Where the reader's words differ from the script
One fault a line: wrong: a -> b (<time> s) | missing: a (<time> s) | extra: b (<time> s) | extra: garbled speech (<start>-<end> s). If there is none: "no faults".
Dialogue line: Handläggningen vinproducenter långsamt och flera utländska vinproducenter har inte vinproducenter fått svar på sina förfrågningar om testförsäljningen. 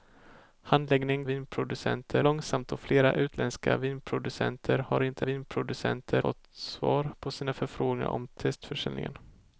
no faults